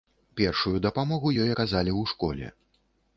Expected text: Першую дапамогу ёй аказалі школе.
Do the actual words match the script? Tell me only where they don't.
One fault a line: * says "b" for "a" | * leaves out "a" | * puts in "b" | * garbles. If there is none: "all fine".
* puts in "ў"